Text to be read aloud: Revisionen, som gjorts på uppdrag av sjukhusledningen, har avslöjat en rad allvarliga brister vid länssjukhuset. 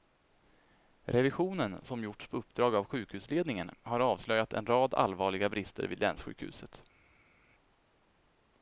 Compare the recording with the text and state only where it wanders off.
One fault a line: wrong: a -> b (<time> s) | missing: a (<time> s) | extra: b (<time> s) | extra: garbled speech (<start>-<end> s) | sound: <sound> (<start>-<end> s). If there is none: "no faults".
no faults